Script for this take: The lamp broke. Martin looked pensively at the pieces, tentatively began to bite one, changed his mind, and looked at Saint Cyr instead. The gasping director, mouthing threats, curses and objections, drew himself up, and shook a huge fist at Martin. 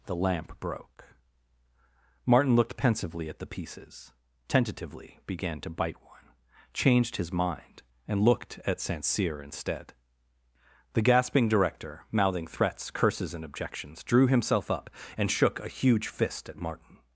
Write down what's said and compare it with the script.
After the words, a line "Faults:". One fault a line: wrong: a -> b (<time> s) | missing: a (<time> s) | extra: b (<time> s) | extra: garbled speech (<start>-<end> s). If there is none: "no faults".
The lamp broke. Martin looked pensively at the pieces, tentatively began to bite one, changed his mind, and looked at Saint Cyr instead. The gasping director, mouthing threats, curses and objections, drew himself up, and shook a huge fist at Martin.
Faults:
no faults